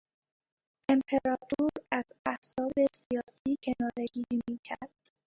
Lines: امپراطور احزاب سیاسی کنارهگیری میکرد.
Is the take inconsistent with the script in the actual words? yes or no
yes